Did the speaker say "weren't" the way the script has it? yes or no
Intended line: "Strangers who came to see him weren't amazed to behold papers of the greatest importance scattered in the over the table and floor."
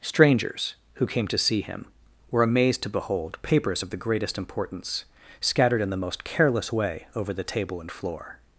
no